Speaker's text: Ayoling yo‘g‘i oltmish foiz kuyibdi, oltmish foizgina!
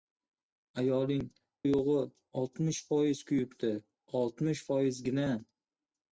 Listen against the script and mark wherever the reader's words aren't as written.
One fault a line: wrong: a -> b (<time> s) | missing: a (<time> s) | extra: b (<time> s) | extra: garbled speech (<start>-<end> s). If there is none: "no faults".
no faults